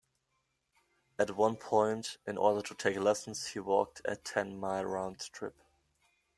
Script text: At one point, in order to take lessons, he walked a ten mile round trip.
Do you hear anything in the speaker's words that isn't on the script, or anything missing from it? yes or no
no